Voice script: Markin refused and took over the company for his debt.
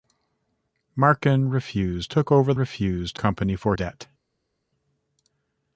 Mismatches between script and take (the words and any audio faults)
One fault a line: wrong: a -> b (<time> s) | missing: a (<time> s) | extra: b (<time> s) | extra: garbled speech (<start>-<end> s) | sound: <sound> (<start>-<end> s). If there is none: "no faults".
missing: and (2.1 s)
wrong: the -> refused (2.5 s)
missing: his (3.8 s)